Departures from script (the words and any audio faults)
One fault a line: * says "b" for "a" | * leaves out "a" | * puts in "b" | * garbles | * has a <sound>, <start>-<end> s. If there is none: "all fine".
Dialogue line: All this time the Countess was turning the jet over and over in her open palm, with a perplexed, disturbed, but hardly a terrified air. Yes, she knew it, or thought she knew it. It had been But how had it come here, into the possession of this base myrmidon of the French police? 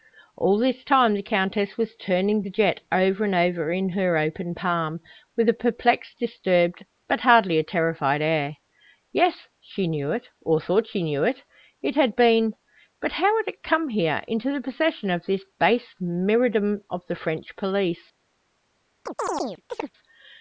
* has a chirp, 19.1-19.9 s